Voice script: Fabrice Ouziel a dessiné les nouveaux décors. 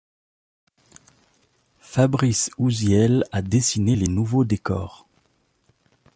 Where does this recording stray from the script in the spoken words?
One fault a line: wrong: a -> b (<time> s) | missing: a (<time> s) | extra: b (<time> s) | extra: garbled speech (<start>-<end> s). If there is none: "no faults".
no faults